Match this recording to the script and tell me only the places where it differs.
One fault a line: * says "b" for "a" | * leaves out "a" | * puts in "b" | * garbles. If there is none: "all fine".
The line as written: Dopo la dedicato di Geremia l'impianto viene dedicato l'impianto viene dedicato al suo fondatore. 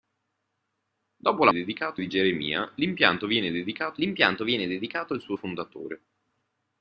all fine